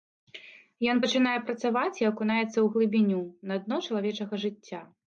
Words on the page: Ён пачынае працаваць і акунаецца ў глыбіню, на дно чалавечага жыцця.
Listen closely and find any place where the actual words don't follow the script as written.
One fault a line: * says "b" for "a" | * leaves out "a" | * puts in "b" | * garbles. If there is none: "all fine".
all fine